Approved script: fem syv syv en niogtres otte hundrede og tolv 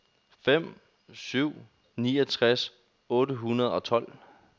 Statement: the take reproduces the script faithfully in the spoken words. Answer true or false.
false